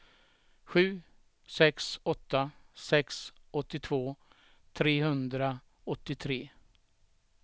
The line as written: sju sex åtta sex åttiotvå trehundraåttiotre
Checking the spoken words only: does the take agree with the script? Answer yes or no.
yes